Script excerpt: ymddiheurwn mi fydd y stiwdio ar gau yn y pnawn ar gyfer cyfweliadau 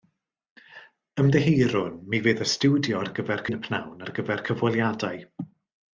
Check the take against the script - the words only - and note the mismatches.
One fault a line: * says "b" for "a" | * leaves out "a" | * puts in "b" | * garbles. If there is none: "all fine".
* says "gyfer" for "gau"